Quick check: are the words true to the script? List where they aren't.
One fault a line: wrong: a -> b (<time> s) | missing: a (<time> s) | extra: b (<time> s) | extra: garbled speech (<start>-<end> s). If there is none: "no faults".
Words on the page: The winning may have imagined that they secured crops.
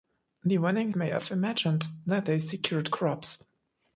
no faults